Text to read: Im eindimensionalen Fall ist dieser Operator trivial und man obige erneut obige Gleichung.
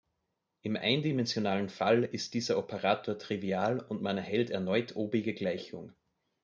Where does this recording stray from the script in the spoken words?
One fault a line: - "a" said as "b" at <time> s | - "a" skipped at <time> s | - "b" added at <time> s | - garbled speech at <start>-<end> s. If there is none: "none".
- "obige" said as "erhält" at 4.2 s